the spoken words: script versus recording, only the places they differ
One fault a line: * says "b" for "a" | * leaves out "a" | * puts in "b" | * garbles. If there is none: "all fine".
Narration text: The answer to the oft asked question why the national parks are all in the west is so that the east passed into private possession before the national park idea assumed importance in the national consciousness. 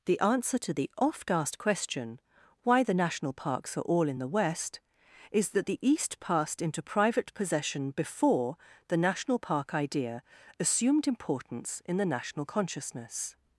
* leaves out "so"